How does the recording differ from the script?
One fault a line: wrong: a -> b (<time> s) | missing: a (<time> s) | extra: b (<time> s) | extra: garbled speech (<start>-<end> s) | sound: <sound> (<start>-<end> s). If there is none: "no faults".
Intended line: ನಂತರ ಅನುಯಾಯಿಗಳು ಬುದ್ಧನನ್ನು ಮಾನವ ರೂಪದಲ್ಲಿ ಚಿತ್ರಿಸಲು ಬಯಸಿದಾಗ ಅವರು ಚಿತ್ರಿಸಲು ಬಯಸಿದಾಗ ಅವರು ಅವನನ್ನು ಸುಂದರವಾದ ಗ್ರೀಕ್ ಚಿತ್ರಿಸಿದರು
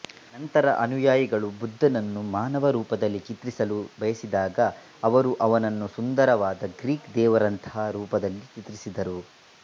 missing: ಚಿತ್ರಿಸಲು ಬಯಸಿದಾಗ ಅವರು (5.3 s)
extra: ದೇವರಂತಹ ರೂಪದಲ್ಲಿ (7.2 s)